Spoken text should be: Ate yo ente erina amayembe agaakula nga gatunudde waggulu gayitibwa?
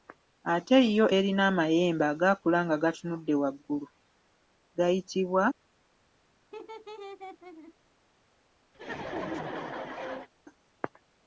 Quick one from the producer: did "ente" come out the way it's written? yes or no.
no